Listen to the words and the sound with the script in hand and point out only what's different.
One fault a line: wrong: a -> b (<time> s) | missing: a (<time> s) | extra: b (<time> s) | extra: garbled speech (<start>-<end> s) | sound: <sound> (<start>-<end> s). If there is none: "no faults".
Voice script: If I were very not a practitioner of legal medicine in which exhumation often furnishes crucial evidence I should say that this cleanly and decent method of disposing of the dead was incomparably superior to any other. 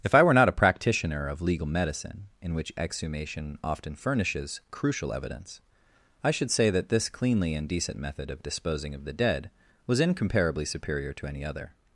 missing: very (0.3 s)